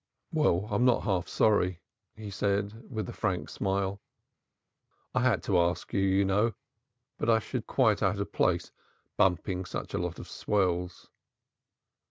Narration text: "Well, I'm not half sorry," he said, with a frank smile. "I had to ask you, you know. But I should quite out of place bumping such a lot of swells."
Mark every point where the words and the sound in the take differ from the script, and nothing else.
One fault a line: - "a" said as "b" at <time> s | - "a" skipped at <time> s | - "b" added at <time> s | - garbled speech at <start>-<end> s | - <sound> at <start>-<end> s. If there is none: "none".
none